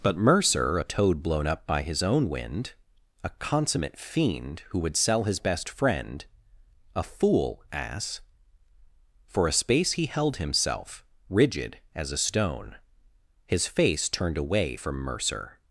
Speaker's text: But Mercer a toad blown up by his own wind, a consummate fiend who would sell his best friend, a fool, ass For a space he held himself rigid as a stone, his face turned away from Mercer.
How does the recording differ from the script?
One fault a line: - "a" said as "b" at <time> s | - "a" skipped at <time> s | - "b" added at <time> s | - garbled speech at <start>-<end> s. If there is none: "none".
none